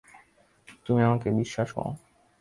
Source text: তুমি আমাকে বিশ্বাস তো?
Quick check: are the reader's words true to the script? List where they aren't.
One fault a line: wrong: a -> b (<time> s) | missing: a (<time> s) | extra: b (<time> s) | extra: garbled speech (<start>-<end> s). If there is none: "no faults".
no faults